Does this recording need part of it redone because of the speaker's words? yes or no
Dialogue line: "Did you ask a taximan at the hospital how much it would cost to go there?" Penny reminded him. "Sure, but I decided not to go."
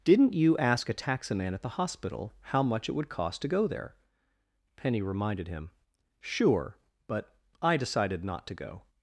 yes